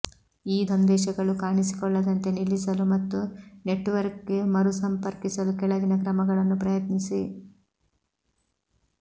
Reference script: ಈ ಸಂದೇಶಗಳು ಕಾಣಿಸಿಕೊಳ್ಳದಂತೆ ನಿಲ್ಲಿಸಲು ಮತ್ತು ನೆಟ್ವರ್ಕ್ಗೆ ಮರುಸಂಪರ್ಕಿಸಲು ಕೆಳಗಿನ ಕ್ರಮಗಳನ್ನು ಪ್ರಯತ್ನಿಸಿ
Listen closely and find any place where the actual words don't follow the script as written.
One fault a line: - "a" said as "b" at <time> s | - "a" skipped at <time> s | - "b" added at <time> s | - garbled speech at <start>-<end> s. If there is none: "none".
none